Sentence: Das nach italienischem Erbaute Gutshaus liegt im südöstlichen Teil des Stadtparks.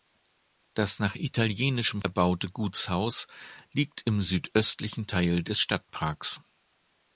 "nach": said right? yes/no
yes